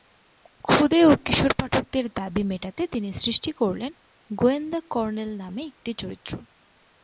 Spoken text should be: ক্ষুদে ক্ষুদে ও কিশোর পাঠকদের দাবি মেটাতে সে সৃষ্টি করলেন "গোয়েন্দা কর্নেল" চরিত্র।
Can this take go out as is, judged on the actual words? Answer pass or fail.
fail